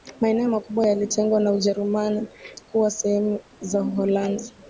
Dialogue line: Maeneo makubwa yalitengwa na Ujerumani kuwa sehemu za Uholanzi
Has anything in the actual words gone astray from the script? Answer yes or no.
no